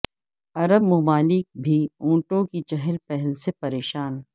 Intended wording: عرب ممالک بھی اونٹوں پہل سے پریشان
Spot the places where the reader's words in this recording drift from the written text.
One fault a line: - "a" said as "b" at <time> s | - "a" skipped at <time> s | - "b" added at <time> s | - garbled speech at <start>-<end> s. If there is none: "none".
- "کی چہل" added at 2.4 s